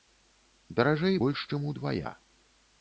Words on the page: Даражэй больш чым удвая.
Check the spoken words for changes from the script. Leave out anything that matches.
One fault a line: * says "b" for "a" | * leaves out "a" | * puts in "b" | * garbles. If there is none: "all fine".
all fine